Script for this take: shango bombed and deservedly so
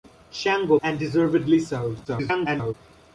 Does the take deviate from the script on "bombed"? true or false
true